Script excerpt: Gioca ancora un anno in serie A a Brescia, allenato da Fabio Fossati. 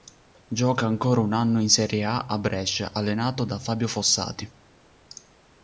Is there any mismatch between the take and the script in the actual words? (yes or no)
no